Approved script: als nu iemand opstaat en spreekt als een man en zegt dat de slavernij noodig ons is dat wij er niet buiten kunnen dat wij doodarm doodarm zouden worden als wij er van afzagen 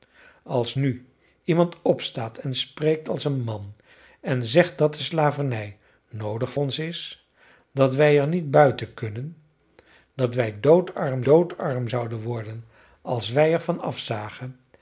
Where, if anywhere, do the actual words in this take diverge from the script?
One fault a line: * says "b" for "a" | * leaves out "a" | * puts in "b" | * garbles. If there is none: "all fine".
all fine